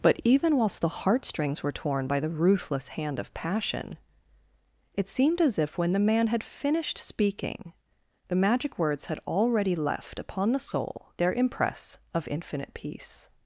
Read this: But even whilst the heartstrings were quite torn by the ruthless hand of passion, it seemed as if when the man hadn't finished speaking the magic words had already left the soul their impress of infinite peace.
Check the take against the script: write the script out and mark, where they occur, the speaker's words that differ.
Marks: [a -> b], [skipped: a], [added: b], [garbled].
But even whilst the heartstrings were [skipped: quite] torn by the ruthless hand of passion, it seemed as if when the man [hadn't -> had] finished speaking the magic words had already left [added: upon] the soul their impress of infinite peace.